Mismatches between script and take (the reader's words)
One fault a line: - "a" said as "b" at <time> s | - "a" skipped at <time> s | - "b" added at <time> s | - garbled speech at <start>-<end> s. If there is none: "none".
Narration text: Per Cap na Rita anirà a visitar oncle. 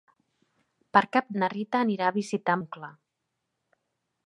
none